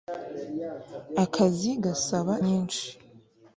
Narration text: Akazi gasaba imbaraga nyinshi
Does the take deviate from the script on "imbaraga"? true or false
true